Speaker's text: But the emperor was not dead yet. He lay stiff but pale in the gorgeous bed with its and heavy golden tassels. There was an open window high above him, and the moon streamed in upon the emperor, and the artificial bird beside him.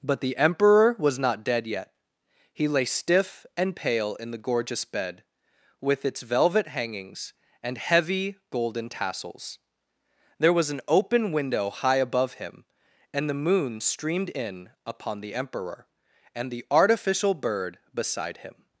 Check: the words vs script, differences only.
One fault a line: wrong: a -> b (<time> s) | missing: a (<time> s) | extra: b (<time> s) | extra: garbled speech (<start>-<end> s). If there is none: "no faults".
wrong: but -> and (3.5 s)
extra: velvet hangings (6.2 s)